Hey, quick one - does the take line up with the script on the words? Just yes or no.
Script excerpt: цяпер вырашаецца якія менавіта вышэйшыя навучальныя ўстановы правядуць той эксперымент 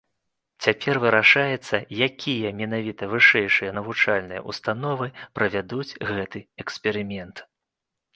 no